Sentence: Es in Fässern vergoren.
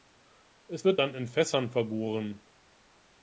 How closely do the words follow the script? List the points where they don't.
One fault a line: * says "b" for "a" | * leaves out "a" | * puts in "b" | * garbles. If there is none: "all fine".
* puts in "wird dann"